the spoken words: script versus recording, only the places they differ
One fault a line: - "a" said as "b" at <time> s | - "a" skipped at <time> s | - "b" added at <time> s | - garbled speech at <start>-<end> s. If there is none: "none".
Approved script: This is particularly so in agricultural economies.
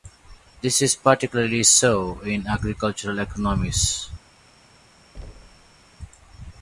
none